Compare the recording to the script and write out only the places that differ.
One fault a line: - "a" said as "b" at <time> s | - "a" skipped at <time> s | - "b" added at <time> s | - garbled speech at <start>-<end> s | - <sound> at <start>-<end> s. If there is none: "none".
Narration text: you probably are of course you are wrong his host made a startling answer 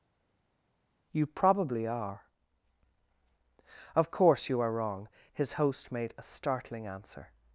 none